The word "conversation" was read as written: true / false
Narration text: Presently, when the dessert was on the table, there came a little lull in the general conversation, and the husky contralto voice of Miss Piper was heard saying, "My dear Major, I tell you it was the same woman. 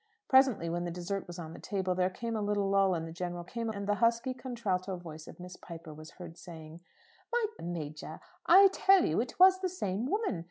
false